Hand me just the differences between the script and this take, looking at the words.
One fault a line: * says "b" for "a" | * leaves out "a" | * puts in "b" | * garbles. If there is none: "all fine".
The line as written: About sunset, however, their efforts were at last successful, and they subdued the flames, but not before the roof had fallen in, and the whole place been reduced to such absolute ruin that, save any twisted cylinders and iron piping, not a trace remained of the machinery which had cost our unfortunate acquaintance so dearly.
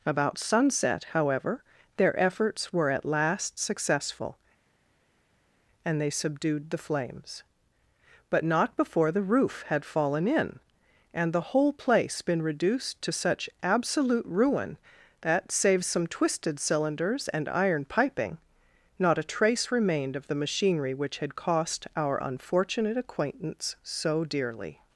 * says "some" for "any"